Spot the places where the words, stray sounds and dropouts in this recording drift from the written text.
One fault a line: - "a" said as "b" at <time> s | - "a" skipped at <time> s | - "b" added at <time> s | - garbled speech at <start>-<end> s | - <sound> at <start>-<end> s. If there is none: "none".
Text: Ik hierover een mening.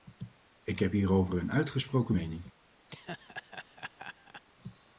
- "heb" added at 0.8 s
- "uitgesproken" added at 1.5 s
- laugh at 2.9-4.4 s